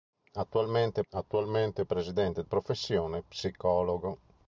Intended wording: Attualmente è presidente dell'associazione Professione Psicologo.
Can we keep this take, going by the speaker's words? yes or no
no